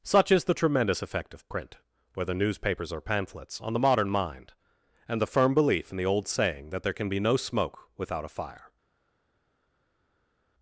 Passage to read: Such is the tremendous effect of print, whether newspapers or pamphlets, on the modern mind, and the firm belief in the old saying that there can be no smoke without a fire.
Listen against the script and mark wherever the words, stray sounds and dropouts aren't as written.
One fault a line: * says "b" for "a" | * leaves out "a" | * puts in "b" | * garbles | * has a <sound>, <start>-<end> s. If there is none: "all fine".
all fine